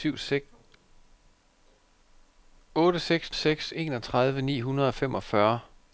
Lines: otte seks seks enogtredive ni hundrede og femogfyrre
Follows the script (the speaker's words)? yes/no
yes